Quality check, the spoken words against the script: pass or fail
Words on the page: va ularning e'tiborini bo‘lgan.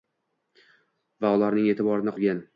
pass